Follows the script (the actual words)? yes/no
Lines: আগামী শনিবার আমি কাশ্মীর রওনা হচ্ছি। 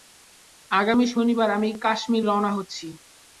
yes